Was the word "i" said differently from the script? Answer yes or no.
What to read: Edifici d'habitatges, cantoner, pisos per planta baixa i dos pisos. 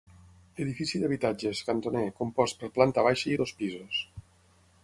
no